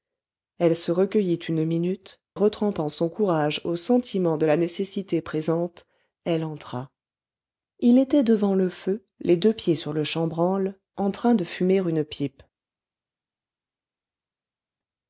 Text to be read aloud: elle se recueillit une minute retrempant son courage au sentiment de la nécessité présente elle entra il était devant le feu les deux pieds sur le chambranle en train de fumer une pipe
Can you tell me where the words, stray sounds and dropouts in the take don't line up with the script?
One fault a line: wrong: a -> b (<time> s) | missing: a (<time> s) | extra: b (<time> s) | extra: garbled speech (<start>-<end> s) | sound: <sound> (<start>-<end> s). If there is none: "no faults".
no faults